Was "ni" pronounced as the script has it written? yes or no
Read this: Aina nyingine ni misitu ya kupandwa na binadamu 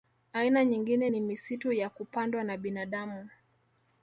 yes